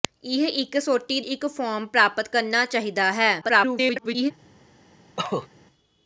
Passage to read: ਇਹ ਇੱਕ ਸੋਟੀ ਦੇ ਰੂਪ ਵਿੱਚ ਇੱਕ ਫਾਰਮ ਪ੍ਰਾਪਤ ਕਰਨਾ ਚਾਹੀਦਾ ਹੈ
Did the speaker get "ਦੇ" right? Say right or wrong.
wrong